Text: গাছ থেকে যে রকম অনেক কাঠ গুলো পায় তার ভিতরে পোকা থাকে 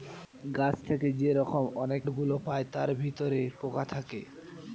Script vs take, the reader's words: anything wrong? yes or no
yes